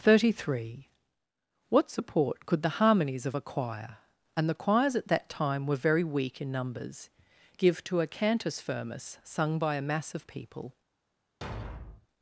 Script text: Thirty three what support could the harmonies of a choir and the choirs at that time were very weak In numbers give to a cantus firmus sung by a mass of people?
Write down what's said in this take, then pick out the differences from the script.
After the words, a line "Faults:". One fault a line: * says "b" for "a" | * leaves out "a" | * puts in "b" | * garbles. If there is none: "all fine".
Thirty three what support could the harmonies of a choir and the choirs at that time were very weak In numbers give to a cantus firmus sung by a mass of people?
Faults:
all fine